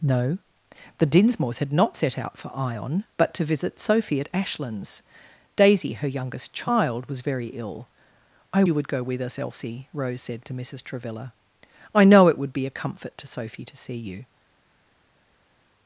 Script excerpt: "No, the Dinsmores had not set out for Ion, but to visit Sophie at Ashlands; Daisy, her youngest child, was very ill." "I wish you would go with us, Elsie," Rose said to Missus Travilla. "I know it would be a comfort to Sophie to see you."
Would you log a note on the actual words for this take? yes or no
yes